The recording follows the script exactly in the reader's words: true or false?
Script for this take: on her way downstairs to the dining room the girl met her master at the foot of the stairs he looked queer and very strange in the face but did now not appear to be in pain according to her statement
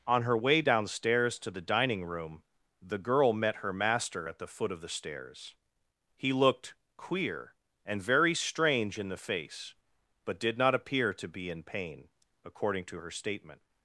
false